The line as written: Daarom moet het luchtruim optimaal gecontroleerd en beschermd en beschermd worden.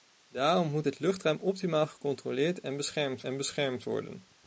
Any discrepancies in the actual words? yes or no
no